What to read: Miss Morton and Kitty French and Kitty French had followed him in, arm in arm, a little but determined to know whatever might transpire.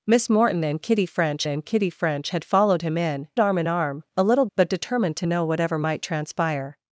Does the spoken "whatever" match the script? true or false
true